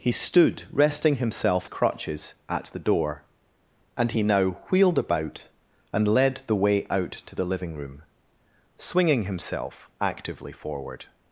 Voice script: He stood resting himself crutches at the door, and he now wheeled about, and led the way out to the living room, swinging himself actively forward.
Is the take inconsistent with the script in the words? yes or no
no